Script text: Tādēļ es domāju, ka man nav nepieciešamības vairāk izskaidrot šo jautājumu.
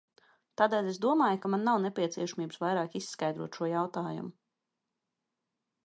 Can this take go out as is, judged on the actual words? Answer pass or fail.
pass